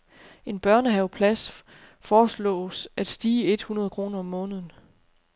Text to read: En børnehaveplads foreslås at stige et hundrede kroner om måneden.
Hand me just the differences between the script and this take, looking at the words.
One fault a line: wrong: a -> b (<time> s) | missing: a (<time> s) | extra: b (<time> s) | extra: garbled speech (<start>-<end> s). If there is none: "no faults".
no faults